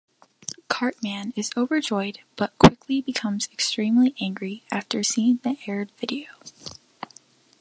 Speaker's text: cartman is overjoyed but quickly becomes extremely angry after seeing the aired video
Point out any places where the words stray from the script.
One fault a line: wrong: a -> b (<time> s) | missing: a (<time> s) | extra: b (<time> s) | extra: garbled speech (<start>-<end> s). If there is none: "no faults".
no faults